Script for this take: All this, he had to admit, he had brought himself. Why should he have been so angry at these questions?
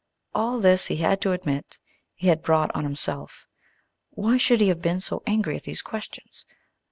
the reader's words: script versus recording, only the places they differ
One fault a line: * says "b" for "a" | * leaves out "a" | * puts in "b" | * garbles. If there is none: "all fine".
* puts in "on"